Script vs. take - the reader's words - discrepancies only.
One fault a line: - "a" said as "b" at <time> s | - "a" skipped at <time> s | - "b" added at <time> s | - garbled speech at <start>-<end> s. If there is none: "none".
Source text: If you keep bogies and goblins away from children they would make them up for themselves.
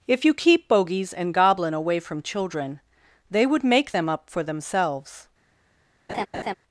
- "goblins" said as "goblin" at 1.3 s